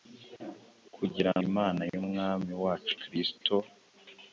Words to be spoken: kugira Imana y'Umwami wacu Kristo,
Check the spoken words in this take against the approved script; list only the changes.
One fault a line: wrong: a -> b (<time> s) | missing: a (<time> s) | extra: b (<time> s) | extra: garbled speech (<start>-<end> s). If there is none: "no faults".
no faults